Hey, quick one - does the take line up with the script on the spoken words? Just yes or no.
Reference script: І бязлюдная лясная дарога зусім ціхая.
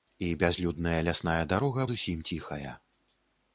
yes